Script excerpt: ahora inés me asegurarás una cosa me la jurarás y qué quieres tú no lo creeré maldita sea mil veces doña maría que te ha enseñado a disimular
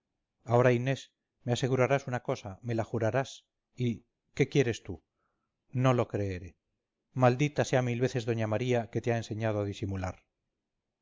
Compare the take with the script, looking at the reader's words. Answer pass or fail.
pass